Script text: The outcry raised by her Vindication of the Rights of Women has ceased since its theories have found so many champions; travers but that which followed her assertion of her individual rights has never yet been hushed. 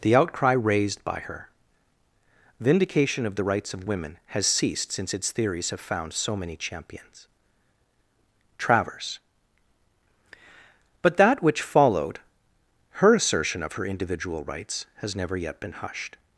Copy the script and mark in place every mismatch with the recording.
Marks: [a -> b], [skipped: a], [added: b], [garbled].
The outcry raised by her Vindication of the Rights of Women has ceased since its theories have found so many champions; travers but that which followed her assertion of her individual rights has never yet been hushed.